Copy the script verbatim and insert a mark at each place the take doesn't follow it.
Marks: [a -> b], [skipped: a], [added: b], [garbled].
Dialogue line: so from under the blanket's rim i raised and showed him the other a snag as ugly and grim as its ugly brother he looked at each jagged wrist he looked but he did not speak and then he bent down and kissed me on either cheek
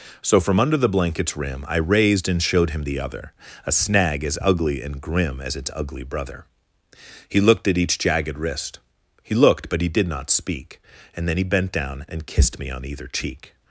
so from under the blanket's rim i raised and showed him the other a snag as ugly and grim as its ugly brother he looked at each jagged wrist he looked but he did not speak and then he bent down and kissed me on either cheek